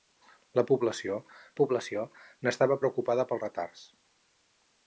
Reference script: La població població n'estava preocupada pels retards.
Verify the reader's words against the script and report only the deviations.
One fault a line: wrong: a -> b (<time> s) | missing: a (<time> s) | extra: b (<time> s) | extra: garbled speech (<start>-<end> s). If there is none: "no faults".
no faults